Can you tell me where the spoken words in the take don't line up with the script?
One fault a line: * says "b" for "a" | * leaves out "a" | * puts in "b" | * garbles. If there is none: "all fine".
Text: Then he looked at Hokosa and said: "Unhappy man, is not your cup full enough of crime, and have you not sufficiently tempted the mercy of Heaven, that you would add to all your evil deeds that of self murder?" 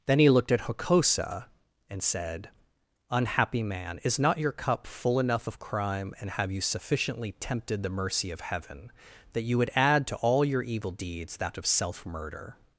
* leaves out "not"